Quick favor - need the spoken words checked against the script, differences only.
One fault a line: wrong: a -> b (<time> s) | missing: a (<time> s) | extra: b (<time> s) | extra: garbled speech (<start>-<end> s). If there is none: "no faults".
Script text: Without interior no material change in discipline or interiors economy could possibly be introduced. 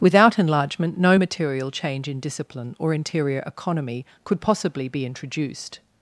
wrong: interior -> enlargement (0.4 s)
wrong: interiors -> interior (2.9 s)